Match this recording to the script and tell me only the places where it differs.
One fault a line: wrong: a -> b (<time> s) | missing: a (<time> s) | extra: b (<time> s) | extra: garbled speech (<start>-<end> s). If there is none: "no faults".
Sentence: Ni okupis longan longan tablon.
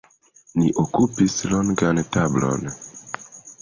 missing: longan (2.0 s)